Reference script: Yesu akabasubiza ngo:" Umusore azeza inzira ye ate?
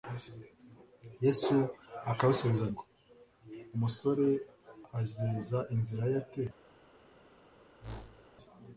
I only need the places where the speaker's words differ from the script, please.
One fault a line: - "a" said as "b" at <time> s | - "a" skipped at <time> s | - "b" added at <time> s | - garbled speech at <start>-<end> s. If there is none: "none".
none